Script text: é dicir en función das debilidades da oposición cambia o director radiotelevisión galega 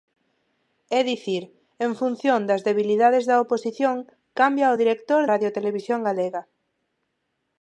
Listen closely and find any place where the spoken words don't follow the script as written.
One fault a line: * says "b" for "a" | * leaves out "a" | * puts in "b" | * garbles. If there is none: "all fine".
all fine